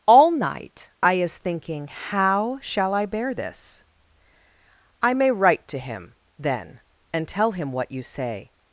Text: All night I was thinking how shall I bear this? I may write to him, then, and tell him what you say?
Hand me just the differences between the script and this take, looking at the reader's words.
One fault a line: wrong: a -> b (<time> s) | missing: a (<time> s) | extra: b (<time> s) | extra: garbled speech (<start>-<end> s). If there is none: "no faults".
wrong: was -> is (1.1 s)